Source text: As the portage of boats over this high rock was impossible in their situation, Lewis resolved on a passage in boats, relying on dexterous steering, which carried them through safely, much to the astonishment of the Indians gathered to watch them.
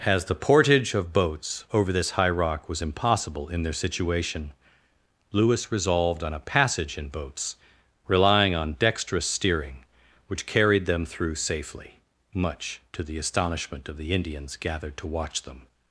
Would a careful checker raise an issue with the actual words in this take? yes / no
no